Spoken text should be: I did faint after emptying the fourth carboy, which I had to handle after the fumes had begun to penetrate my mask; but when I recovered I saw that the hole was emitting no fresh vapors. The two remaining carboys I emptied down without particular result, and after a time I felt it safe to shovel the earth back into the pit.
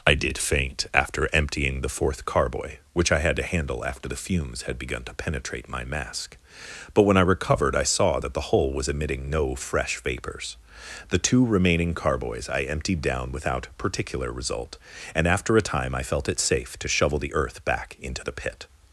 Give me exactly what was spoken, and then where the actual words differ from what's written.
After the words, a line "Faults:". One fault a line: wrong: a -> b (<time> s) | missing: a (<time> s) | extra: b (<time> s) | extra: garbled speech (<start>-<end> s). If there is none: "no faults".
I did faint after emptying the fourth carboy, which I had to handle after the fumes had begun to penetrate my mask; but when I recovered I saw that the hole was emitting no fresh vapors. The two remaining carboys I emptied down without particular result, and after a time I felt it safe to shovel the earth back into the pit.
Faults:
no faults